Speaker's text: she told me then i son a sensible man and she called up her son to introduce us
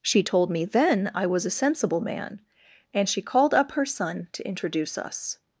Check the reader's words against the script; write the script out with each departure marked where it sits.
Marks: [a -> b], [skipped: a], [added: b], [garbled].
she told me then i [son -> was] a sensible man and she called up her son to introduce us